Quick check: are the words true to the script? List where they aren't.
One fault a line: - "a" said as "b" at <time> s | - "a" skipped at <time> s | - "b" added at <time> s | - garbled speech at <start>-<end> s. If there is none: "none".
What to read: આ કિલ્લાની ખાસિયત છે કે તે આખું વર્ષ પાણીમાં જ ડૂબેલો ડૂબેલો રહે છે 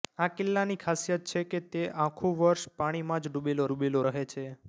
none